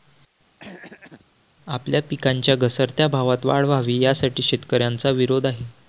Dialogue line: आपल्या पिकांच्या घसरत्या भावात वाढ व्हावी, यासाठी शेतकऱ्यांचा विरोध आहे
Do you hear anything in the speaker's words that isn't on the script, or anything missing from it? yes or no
no